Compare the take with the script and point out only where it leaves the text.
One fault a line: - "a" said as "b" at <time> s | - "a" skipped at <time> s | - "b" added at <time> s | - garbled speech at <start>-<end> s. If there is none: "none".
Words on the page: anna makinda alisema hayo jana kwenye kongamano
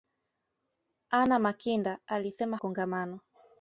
- "hayo jana kwenye" skipped at 2.6 s